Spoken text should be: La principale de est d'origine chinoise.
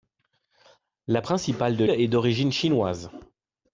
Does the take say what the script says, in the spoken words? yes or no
yes